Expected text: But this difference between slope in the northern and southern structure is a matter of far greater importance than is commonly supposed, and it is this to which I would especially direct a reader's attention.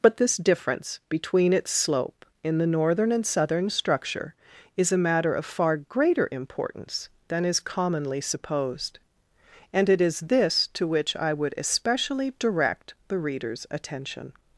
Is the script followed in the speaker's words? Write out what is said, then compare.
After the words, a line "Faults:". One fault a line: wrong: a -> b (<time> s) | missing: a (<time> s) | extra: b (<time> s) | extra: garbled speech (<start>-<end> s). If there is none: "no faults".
But this difference between its slope in the northern and southern structure is a matter of far greater importance than is commonly supposed, and it is this to which I would especially direct the reader's attention.
Faults:
extra: its (1.5 s)
wrong: a -> the (13.1 s)